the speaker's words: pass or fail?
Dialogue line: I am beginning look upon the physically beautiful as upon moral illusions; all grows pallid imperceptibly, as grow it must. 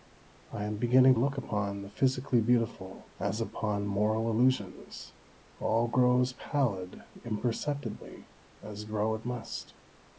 pass